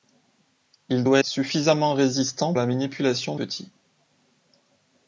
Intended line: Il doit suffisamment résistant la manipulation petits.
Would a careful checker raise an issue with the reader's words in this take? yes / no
no